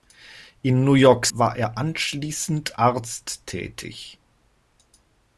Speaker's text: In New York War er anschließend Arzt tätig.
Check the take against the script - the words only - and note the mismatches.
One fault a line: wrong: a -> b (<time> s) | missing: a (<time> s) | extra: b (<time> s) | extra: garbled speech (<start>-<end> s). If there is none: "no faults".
no faults